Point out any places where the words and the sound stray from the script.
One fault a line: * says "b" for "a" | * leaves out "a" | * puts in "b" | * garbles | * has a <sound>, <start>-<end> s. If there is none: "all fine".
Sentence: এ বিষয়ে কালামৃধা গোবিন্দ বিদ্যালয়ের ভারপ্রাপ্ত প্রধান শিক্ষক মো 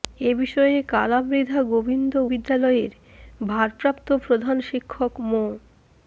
all fine